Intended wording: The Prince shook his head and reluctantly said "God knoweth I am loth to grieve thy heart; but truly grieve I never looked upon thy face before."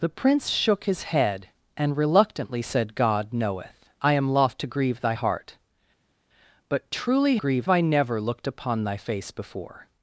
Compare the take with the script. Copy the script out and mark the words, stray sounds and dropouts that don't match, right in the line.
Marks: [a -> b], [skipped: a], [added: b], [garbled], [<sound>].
The Prince shook his head and reluctantly said "God knoweth I am loth to grieve thy heart; but truly grieve I never looked upon thy face before."